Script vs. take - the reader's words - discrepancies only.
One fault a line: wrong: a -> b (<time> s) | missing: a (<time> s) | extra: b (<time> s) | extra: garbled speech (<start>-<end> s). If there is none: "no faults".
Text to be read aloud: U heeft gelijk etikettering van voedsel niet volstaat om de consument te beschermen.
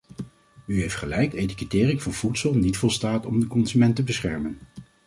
no faults